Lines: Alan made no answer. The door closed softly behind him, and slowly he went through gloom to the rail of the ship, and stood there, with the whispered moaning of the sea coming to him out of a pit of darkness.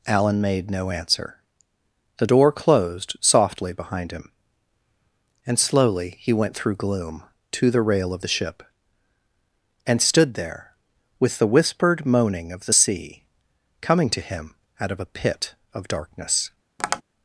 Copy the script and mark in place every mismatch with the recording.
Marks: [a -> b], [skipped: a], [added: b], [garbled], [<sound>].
Alan made no answer. The door closed softly behind him, and slowly he went through gloom to the rail of the ship, and stood there, with the whispered moaning of the sea coming to him out of a pit of darkness. [tap]